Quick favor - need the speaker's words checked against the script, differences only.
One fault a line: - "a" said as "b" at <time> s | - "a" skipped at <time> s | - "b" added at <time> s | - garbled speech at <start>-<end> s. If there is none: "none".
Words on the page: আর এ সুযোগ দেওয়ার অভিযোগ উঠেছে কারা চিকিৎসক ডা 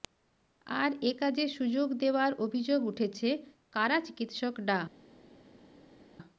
- "কাজে" added at 1.2 s